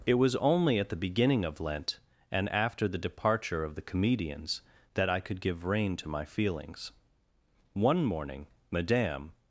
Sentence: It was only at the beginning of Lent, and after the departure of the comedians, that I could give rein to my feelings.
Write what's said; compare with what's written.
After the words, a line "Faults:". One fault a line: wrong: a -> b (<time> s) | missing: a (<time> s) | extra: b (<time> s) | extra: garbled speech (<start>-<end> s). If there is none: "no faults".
It was only at the beginning of Lent, and after the departure of the comedians, that I could give rein to my feelings. One morning Madame
Faults:
extra: One morning Madame (7.7 s)